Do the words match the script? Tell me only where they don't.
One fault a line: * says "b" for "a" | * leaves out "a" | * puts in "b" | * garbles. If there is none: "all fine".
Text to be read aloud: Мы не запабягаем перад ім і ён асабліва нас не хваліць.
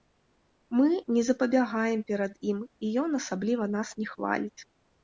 all fine